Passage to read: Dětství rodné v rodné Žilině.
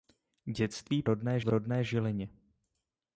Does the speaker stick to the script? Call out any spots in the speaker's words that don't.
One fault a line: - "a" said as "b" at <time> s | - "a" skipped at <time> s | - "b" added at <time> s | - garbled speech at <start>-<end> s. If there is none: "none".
none